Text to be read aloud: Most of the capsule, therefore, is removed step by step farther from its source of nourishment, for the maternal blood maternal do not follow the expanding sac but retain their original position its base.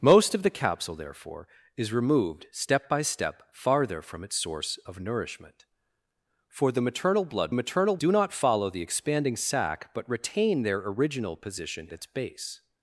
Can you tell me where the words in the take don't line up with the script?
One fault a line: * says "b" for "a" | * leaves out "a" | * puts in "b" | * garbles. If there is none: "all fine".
all fine